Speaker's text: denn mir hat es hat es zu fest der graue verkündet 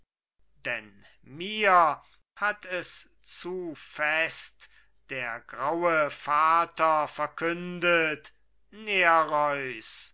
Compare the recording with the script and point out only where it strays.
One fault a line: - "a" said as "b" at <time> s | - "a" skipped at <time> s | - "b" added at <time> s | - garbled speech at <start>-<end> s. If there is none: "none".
- "hat es" skipped at 3.1 s
- "vater" added at 6.1 s